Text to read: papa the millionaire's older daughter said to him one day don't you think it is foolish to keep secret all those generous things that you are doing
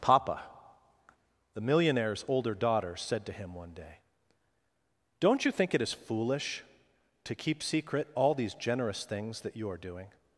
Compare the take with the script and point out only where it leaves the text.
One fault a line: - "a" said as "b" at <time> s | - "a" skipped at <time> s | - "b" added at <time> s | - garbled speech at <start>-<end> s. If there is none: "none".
- "those" said as "these" at 8.3 s